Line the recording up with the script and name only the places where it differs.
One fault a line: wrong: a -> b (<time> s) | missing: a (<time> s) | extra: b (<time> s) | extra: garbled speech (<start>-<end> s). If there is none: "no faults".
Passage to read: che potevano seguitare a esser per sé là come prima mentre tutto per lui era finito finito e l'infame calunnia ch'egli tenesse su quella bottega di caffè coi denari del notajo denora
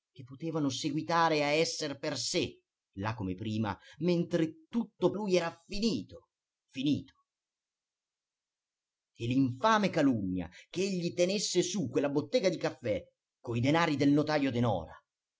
missing: per (5.1 s)